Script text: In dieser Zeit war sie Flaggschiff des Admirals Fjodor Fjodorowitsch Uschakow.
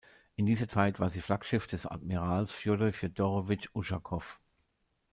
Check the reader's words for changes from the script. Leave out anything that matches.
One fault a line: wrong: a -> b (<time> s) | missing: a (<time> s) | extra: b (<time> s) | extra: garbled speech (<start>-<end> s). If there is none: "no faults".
no faults